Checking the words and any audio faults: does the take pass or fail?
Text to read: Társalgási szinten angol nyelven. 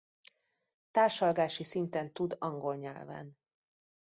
fail